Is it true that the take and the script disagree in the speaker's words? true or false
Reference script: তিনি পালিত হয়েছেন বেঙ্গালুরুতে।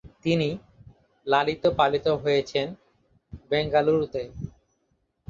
true